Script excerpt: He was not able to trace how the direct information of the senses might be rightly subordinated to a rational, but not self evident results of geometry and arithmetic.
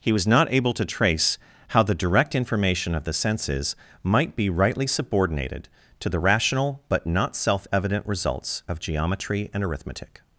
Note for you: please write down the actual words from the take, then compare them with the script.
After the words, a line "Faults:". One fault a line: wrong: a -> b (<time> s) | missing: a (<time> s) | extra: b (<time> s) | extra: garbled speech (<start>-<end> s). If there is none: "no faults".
He was not able to trace how the direct information of the senses might be rightly subordinated to the rational, but not self evident results of geometry and arithmetic.
Faults:
wrong: a -> the (6.1 s)